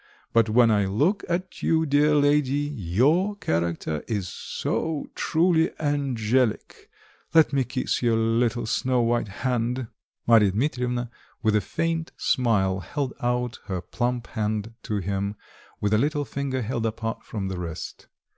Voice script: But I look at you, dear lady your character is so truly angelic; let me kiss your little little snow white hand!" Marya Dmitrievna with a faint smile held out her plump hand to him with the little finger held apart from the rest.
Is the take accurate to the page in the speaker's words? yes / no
no